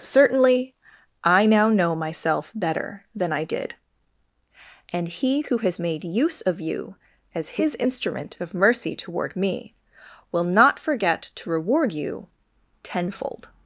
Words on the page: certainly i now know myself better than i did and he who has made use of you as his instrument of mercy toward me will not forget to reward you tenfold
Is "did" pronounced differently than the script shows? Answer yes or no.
no